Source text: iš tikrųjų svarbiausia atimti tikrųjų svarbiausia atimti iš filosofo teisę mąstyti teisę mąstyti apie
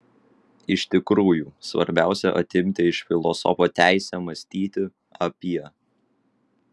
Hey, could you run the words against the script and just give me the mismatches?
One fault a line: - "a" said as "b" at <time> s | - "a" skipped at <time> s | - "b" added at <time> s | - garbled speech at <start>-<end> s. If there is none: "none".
- "tikrųjų svarbiausia atimti" skipped at 2.9 s
- "teisę mąstyti" skipped at 4.9 s